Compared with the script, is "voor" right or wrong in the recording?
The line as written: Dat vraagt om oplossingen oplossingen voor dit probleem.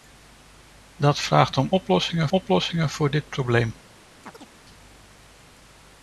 right